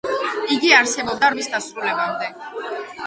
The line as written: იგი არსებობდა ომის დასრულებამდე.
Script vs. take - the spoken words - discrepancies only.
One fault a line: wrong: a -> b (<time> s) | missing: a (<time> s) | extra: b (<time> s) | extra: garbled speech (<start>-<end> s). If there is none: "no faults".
no faults